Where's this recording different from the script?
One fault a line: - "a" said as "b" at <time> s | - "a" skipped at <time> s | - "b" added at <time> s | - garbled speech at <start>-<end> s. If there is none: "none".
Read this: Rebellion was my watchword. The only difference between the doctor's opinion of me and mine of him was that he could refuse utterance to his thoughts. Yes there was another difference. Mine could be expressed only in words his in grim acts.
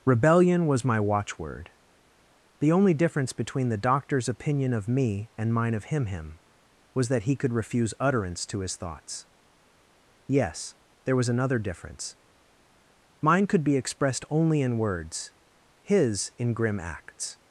- "him" added at 6.1 s